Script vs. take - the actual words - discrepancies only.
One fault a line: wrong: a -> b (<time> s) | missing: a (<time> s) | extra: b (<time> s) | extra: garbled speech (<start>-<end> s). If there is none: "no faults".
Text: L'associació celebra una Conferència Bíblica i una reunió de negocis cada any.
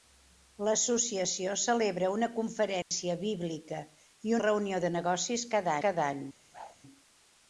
missing: una (4.3 s)
extra: cada (5.9 s)